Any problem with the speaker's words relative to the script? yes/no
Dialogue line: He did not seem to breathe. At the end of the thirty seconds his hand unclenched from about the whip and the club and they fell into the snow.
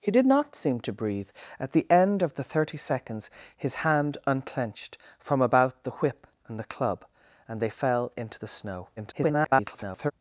yes